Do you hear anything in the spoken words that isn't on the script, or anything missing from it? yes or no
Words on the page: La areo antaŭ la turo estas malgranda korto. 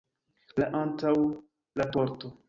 yes